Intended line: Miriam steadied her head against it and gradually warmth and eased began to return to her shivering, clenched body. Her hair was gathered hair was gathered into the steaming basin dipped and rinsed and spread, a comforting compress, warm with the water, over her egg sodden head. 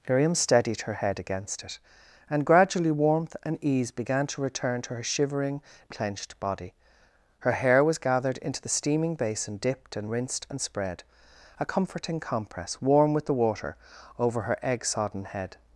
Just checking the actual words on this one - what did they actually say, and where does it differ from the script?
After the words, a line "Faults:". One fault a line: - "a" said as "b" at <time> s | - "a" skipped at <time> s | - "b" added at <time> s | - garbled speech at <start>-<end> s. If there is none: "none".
Miriam steadied her head against it and gradually warmth and ease began to return to her shivering, clenched body. Her hair was gathered into the steaming basin dipped and rinsed and spread, a comforting compress, warm with the water, over her egg sodden head.
Faults:
- "eased" said as "ease" at 3.6 s
- "hair was gathered" skipped at 8.4 s